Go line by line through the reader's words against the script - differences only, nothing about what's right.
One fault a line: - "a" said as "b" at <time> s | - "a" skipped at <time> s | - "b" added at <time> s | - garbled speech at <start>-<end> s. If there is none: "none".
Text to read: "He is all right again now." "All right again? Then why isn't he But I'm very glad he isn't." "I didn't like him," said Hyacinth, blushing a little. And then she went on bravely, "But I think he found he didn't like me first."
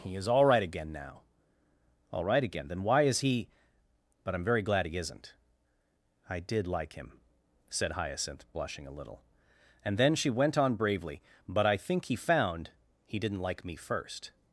- "isn't" said as "is" at 3.0 s
- "didn't" said as "did" at 6.4 s